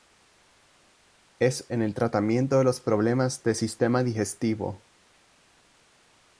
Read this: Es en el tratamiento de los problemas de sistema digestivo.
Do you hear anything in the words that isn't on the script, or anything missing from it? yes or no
no